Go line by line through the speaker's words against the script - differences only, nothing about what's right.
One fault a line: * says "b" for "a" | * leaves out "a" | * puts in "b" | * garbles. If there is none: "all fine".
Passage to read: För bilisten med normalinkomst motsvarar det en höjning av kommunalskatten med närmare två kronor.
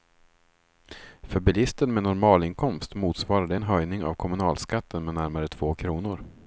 all fine